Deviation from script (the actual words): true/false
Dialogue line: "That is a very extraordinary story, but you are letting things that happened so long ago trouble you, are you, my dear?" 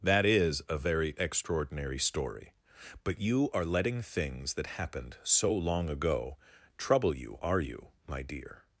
false